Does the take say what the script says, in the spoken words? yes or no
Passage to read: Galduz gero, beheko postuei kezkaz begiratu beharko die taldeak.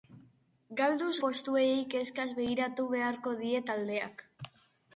no